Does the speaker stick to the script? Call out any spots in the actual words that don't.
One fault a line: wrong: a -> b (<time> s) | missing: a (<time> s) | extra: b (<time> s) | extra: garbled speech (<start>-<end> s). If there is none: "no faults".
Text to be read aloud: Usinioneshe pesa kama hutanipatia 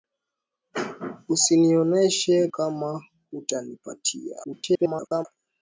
missing: pesa (2.5 s)
extra: garbled speech (4.4-5.3 s)